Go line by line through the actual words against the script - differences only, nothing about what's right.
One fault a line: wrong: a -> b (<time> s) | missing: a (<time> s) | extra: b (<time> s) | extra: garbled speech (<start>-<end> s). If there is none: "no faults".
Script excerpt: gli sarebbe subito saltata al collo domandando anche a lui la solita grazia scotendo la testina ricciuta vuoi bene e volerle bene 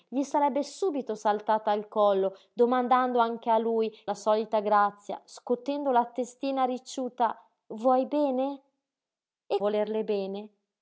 no faults